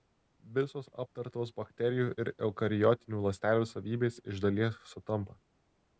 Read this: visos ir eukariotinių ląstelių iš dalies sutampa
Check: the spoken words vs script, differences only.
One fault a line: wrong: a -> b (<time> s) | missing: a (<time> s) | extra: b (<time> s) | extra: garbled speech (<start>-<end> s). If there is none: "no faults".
extra: aptartos bakterijų (1.0 s)
extra: savybės (3.7 s)